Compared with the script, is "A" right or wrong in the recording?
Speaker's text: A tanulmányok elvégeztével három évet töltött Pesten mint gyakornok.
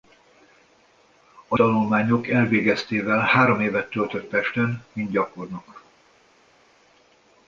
right